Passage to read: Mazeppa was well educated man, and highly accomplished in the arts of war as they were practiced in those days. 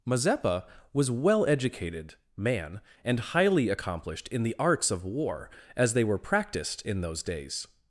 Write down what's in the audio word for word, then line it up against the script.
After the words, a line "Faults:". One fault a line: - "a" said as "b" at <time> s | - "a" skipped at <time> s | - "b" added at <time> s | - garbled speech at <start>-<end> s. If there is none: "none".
Mazeppa was well educated man, and highly accomplished in the arts of war as they were practiced in those days.
Faults:
none